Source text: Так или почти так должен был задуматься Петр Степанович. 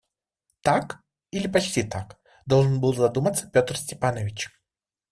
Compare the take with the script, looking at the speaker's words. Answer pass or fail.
pass